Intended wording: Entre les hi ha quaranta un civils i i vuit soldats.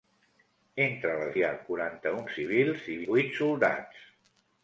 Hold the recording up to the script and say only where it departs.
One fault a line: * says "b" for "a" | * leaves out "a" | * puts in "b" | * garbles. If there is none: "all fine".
all fine